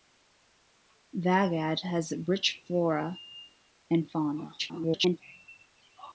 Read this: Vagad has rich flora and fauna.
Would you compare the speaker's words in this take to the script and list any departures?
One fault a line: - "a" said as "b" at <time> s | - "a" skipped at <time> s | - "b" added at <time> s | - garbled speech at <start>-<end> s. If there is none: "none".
- garbled speech at 4.6-5.2 s